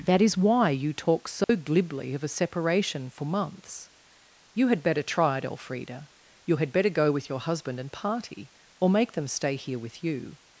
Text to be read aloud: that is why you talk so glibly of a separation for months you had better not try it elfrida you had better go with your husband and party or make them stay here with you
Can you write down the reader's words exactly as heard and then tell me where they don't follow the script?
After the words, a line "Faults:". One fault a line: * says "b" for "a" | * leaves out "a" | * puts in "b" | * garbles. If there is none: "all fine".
that is why you talk so glibly of a separation for months you had better try it elfrida you had better go with your husband and party or make them stay here with you
Faults:
* leaves out "not"